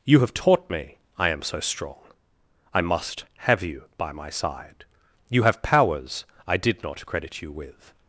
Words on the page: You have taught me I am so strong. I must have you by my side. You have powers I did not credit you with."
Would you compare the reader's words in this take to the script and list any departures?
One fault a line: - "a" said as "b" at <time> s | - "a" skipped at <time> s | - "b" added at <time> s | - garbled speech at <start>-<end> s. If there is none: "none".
none